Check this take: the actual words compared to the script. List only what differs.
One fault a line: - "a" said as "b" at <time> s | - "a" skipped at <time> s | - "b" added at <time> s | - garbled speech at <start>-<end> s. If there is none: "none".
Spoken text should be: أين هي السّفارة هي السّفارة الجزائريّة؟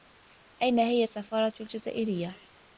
- "هي السّفارة" skipped at 1.5 s